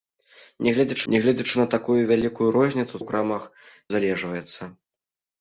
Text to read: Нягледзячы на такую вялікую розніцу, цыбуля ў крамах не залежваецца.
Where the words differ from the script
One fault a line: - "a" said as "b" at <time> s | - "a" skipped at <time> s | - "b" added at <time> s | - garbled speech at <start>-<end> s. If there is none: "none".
- "нягледзячы" added at 1.1 s
- "цыбуля" skipped at 3.0 s
- "не" skipped at 3.4 s